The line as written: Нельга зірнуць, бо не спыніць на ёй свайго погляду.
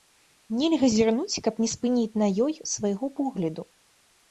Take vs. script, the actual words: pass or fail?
fail